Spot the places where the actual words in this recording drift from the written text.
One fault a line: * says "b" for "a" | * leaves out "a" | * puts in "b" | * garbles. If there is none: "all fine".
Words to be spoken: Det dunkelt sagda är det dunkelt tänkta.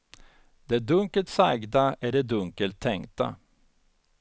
all fine